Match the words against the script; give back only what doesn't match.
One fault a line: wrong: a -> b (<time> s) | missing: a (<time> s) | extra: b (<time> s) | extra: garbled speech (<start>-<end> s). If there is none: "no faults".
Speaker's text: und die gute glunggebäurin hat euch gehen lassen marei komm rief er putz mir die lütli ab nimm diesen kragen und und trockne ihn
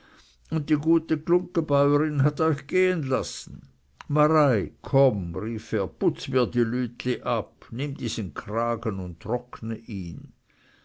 missing: und (9.2 s)